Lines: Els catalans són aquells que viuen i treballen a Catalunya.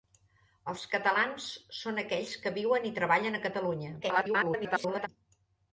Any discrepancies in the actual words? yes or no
yes